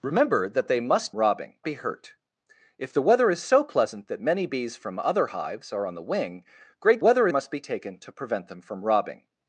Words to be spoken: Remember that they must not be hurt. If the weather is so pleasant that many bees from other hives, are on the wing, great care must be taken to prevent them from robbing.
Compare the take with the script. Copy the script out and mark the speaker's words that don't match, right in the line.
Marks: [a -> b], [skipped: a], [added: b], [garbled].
Remember that they must [not -> robbing] be hurt. If the weather is so pleasant that many bees from other hives, are on the wing, great [care -> weather] must be taken to prevent them from robbing.